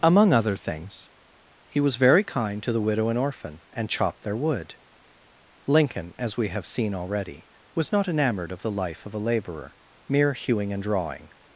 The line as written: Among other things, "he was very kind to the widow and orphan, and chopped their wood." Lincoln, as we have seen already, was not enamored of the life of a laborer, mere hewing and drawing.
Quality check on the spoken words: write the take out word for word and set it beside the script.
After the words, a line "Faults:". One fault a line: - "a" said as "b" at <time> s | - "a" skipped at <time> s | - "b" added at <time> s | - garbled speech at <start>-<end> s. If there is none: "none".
Among other things, "he was very kind to the widow and orphan, and chopped their wood." Lincoln, as we have seen already, was not enamored of the life of a laborer, mere hewing and drawing.
Faults:
none